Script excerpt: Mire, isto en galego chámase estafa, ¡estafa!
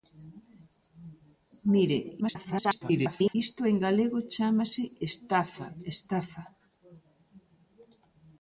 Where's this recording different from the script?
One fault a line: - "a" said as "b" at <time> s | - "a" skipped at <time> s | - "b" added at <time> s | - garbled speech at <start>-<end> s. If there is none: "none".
- garbled speech at 2.2-3.3 s